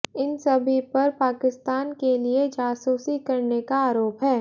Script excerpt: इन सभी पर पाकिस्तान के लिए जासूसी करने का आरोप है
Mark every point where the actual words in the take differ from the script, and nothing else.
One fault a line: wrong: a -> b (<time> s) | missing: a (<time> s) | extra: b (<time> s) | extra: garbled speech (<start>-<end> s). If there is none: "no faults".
no faults